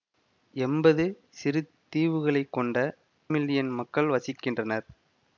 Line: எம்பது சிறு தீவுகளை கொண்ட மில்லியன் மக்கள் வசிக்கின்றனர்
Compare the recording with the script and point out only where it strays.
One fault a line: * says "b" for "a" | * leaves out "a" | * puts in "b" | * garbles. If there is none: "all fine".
all fine